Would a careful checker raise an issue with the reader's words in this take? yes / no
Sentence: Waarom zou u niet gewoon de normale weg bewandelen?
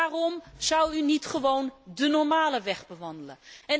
no